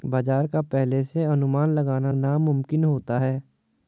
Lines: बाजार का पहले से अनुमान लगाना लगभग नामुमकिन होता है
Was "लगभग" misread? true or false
true